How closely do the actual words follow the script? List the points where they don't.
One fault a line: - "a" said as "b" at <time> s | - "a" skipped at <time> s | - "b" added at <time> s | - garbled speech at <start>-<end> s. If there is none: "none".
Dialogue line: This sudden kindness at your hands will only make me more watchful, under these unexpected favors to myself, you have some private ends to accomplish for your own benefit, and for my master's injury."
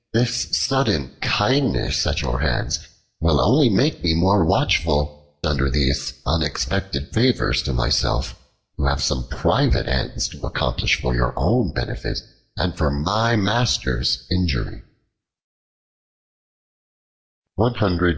none